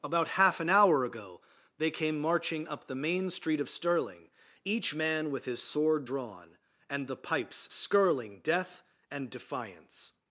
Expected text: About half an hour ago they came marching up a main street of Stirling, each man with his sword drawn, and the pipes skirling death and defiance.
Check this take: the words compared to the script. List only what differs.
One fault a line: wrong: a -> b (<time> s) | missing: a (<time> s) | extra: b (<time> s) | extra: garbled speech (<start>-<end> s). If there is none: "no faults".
wrong: a -> the (2.9 s)